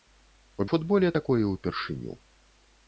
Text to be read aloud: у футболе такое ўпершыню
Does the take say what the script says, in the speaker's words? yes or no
yes